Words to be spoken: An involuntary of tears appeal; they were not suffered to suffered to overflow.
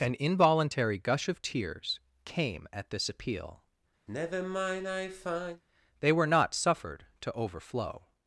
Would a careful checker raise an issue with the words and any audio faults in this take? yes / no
yes